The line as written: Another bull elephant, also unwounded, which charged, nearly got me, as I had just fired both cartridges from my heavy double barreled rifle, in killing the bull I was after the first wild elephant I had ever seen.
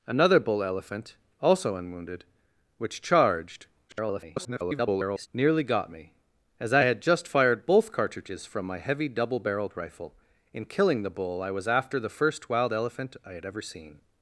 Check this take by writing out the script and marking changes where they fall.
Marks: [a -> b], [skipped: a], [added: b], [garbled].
Another bull elephant, also unwounded, which charged, [garbled] nearly got me, as I had just fired both cartridges from my heavy double barreled rifle, in killing the bull I was after the first wild elephant I had ever seen.